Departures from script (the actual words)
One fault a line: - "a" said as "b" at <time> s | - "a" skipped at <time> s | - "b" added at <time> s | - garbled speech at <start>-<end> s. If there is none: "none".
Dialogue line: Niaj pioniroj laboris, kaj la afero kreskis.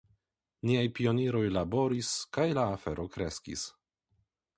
none